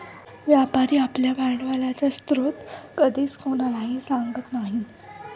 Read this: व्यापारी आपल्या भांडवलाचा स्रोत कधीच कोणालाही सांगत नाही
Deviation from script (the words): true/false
false